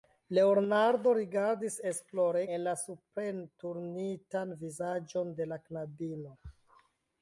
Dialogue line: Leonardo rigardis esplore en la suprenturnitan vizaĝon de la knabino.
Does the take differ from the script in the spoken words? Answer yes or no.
no